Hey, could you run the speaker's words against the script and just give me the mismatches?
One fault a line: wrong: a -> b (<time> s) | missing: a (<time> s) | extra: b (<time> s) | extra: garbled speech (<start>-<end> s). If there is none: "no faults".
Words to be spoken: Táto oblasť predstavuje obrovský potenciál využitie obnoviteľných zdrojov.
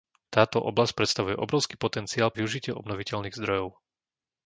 no faults